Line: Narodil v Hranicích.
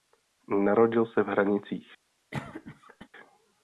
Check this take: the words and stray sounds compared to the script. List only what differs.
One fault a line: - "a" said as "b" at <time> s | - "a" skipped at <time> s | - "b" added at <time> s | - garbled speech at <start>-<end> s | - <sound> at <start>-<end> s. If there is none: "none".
- "se" added at 1.1 s
- cough at 2.3-3.1 s